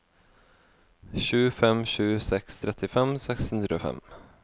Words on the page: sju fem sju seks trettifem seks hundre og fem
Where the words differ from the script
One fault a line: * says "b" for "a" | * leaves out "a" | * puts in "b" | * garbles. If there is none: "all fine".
all fine